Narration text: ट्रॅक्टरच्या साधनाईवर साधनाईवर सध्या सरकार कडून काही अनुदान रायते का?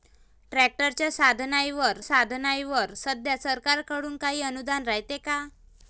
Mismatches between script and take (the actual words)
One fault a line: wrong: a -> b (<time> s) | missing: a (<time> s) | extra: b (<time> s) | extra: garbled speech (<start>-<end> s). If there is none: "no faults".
no faults